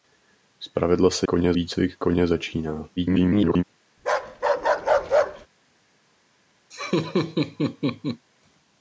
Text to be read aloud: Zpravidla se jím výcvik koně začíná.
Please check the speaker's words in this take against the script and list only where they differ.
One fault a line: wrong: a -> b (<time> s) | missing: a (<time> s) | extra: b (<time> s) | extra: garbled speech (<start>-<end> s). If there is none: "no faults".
wrong: jím -> koně (1.2 s)
extra: garbled speech (3.0-3.6 s)